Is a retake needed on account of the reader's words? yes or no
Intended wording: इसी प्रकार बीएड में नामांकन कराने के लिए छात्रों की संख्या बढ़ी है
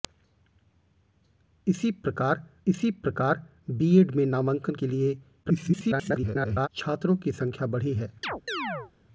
yes